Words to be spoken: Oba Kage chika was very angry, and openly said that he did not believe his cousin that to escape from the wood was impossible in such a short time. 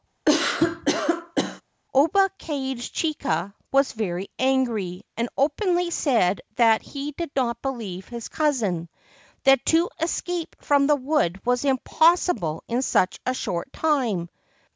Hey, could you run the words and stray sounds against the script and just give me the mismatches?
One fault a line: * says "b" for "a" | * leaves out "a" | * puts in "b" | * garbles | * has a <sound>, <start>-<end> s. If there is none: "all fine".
* has a cough, 0.2-1.6 s